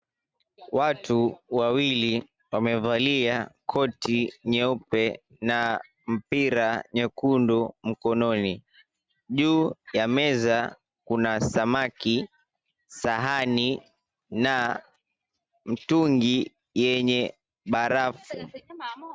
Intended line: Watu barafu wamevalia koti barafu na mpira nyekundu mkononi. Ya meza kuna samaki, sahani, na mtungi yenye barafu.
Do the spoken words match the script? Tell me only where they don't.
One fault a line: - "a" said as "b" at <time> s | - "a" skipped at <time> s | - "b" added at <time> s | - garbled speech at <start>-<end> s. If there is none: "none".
- "barafu" said as "wawili" at 1.5 s
- "barafu" said as "nyeupe" at 4.5 s
- "Juu" added at 9.3 s